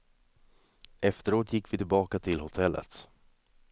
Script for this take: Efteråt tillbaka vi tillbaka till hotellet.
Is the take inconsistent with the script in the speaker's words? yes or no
yes